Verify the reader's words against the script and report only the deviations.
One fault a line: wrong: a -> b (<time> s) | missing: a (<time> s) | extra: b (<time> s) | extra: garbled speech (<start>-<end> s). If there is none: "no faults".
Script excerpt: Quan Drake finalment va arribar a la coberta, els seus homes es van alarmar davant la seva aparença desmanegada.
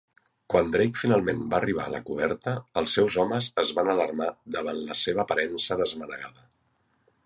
no faults